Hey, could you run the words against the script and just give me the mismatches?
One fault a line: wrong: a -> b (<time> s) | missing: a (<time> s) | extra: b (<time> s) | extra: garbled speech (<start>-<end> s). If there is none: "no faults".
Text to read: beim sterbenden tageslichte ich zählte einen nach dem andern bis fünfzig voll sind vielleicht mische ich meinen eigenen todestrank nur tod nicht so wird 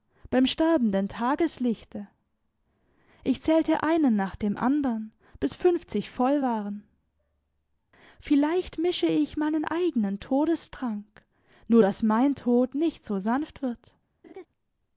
wrong: sind -> waren (6.4 s)
extra: daß mein (11.8 s)
extra: sanft (13.2 s)